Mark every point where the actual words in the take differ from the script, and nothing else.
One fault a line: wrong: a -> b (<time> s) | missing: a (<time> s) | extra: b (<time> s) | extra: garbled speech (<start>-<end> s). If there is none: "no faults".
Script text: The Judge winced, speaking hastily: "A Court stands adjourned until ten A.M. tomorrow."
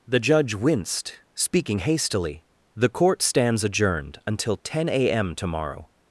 wrong: A -> The (2.8 s)